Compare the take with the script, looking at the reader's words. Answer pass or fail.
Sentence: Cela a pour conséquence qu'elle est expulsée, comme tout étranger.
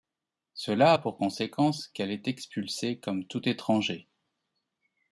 pass